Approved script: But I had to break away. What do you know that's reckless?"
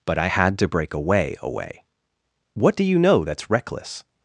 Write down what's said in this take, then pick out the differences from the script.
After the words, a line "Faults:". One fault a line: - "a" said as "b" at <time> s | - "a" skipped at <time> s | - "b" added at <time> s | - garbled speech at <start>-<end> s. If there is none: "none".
But I had to break away away. What do you know that's reckless?"
Faults:
- "away" added at 1.4 s